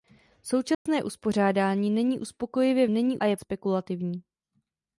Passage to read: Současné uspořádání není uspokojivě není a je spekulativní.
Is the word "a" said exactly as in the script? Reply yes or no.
yes